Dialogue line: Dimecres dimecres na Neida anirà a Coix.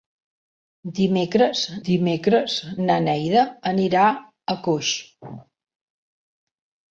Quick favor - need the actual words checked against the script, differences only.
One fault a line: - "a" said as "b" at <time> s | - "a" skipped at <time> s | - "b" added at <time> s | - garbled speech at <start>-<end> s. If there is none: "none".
none